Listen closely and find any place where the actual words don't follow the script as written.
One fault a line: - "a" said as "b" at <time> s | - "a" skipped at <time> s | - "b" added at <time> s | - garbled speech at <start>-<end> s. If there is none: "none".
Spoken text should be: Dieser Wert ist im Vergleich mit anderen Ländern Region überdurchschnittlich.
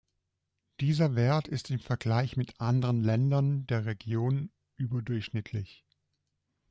- "der" added at 3.7 s